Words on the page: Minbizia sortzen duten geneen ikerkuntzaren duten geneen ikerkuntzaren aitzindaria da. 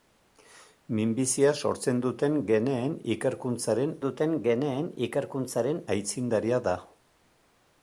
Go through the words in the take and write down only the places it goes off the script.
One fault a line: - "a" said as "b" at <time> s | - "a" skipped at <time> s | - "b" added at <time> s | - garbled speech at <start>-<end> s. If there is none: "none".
none